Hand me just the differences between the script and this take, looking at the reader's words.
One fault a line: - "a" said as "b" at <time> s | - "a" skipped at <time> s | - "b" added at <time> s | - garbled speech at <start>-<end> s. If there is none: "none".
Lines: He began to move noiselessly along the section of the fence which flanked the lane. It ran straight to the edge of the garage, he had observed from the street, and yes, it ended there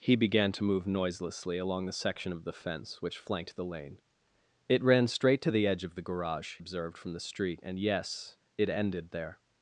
- "he had" skipped at 6.6 s